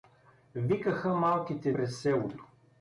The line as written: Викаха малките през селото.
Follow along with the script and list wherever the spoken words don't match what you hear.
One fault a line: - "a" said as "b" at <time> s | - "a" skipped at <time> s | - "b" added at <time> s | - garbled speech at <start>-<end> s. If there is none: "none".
none